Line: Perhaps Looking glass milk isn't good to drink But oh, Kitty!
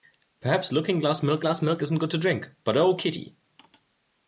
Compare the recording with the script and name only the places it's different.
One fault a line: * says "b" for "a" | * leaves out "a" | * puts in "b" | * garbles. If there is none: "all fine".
* puts in "glass milk"